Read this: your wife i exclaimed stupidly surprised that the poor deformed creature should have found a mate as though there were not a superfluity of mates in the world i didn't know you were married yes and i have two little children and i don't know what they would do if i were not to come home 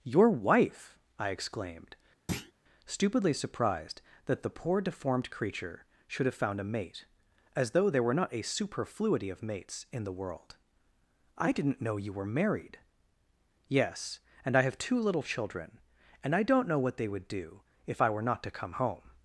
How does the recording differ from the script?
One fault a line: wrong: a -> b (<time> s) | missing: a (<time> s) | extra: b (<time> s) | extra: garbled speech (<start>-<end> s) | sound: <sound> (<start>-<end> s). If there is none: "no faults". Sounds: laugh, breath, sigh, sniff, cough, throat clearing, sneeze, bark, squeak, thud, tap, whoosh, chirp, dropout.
sound: thud (2.3-2.5 s)